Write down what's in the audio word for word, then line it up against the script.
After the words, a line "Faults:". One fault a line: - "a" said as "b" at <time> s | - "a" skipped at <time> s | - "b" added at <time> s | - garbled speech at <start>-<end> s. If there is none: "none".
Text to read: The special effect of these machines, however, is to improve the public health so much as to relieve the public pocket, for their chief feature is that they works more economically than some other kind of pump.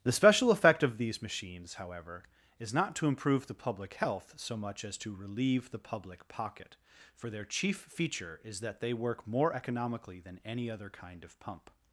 The special effect of these machines, however, is not to improve the public health so much as to relieve the public pocket, for their chief feature is that they work more economically than any other kind of pump.
Faults:
- "not" added at 2.7 s
- "works" said as "work" at 8.9 s
- "some" said as "any" at 10.4 s